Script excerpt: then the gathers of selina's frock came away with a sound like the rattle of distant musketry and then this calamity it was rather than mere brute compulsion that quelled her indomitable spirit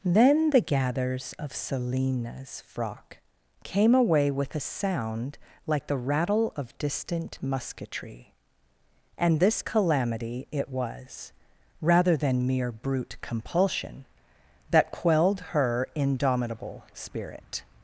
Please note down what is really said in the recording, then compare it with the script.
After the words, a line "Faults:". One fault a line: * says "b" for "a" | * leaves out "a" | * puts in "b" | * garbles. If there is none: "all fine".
then the gathers of selina's frock came away with a sound like the rattle of distant musketry and this calamity it was rather than mere brute compulsion that quelled her indomitable spirit
Faults:
* leaves out "then"